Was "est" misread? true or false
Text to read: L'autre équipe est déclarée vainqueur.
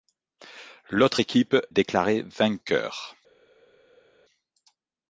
true